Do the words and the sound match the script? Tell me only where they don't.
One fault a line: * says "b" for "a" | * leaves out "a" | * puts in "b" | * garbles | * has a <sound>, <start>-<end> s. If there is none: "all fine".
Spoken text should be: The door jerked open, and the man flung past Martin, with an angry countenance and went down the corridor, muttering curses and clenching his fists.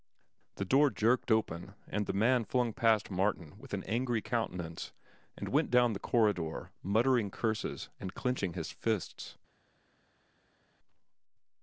all fine